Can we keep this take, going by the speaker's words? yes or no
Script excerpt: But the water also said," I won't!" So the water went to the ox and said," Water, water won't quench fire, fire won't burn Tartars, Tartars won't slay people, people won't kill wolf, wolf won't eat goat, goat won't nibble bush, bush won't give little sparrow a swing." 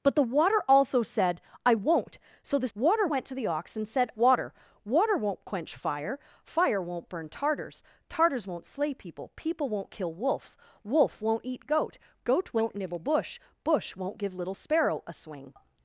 yes